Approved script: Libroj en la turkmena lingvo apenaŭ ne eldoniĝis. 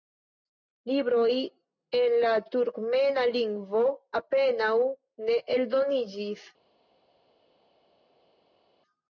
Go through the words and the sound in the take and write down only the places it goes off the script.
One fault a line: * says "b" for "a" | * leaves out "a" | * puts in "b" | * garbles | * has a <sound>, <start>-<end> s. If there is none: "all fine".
all fine